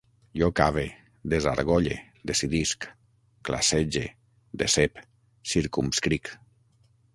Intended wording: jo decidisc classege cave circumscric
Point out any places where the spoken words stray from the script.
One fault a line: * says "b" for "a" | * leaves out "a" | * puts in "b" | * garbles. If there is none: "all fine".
* puts in "cave desargolle"
* says "decep" for "cave"